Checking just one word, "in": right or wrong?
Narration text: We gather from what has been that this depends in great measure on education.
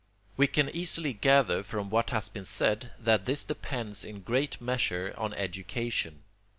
right